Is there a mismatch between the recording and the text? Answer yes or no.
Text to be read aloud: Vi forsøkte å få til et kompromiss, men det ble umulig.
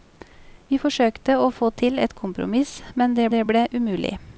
yes